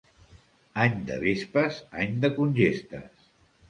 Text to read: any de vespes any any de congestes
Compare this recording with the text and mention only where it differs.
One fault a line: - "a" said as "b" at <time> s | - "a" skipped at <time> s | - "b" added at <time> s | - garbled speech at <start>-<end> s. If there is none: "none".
- "any" skipped at 2.2 s